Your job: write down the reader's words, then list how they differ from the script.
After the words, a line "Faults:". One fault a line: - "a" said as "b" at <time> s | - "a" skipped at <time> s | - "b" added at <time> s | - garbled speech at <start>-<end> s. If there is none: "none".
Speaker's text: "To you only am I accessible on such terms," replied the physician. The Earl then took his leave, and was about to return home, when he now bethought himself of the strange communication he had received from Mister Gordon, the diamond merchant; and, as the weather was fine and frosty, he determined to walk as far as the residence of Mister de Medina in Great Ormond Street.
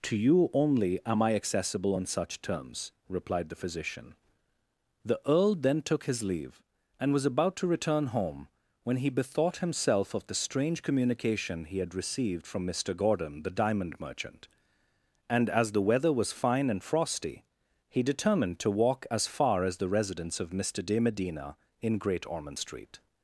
"To you only am I accessible on such terms," replied the physician. The Earl then took his leave, and was about to return home, when he bethought himself of the strange communication he had received from Mister Gordon, the diamond merchant; and, as the weather was fine and frosty, he determined to walk as far as the residence of Mister de Medina in Great Ormond Street.
Faults:
- "now" skipped at 9.1 s